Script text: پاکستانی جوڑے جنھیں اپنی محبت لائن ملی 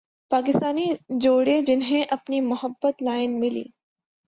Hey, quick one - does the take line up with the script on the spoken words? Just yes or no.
yes